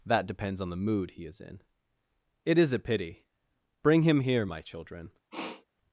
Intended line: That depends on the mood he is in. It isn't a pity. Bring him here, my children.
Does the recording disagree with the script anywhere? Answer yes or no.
yes